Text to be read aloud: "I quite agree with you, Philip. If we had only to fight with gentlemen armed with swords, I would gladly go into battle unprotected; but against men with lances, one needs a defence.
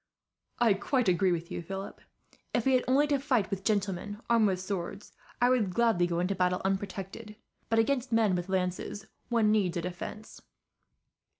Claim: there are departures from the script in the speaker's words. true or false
false